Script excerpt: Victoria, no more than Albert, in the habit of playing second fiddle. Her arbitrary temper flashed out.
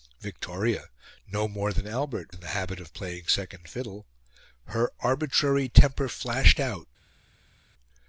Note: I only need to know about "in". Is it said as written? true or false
true